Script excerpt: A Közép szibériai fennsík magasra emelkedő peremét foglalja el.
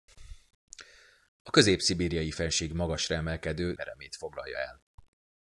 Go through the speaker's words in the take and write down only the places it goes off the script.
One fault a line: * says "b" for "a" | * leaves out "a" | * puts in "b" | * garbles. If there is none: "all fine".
all fine